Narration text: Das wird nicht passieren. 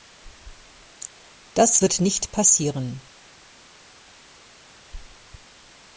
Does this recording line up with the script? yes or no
yes